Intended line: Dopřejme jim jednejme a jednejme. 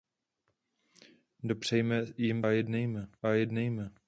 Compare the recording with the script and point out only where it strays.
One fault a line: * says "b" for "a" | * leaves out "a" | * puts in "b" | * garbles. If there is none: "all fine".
all fine